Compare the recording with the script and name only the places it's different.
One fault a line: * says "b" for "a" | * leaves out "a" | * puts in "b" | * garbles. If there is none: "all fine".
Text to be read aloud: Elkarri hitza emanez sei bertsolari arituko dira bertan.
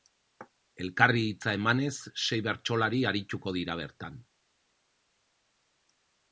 all fine